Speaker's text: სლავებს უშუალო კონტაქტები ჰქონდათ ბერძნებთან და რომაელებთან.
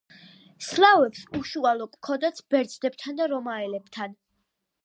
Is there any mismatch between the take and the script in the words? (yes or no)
yes